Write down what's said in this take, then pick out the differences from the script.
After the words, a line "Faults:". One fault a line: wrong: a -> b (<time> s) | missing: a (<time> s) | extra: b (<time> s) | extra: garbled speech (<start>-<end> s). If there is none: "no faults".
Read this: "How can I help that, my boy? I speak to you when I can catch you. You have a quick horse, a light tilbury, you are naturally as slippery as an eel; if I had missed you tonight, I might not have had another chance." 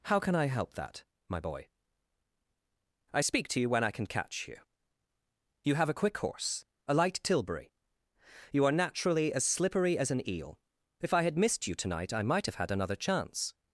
"How can I help that, my boy? I speak to you when I can catch you. You have a quick horse, a light tilbury, you are naturally as slippery as an eel; if I had missed you tonight, I might have had another chance."
Faults:
missing: not (12.5 s)